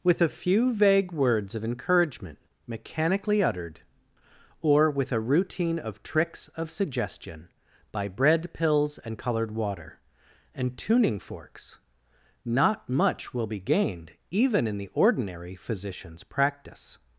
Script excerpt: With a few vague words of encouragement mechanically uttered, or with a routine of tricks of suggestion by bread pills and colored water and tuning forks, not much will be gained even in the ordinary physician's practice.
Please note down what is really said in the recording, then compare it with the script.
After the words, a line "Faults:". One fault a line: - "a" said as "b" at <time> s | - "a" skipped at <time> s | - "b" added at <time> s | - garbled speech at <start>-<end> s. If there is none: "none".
With a few vague words of encouragement mechanically uttered, or with a routine of tricks of suggestion by bread pills and colored water and tuning forks, not much will be gained even in the ordinary physician's practice.
Faults:
none